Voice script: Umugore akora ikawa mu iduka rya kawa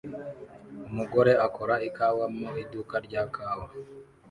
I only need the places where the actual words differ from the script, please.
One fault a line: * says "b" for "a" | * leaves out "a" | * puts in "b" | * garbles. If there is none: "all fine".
all fine